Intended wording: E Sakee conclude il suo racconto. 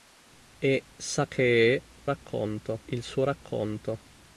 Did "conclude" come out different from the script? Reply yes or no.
yes